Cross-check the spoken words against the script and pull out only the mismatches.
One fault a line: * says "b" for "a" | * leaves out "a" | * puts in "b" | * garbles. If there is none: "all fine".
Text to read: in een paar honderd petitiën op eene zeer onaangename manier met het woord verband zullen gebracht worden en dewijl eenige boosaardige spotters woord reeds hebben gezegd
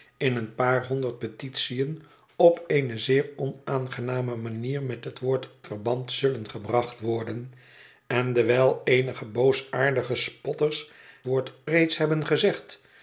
all fine